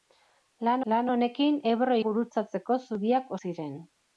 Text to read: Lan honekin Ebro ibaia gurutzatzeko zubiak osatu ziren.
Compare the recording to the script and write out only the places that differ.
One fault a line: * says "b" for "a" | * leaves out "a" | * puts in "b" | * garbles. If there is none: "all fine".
* puts in "lan"
* leaves out "ibaia"
* leaves out "osatu"